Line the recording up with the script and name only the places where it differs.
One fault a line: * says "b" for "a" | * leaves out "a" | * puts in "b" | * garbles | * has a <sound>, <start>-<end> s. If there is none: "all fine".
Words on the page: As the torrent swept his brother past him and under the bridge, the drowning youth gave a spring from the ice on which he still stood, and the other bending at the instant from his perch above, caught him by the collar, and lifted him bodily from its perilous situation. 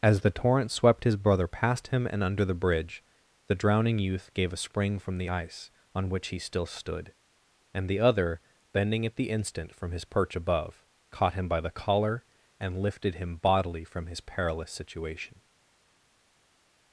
* says "his" for "its"